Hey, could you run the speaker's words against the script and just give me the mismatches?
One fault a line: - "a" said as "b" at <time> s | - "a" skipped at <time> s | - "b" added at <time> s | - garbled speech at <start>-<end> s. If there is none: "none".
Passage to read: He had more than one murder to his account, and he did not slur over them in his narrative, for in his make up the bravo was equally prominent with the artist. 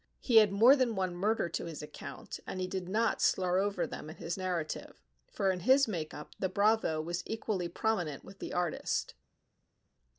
none